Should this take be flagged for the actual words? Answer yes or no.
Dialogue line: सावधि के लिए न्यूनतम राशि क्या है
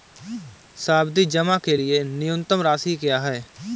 yes